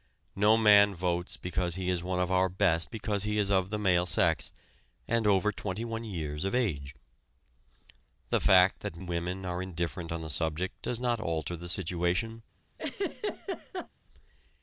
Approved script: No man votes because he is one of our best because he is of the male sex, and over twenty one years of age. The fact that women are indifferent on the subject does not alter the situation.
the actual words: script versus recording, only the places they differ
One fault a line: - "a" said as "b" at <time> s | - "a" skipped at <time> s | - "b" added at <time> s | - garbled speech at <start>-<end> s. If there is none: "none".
none